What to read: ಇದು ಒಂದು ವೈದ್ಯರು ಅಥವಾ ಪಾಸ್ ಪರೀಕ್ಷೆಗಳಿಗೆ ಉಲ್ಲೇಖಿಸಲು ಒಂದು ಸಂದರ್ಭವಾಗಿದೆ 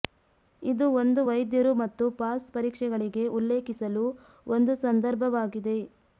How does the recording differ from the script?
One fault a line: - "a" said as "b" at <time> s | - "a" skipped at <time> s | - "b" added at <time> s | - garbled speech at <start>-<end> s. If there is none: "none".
- "ಅಥವಾ" said as "ಮತ್ತು" at 1.8 s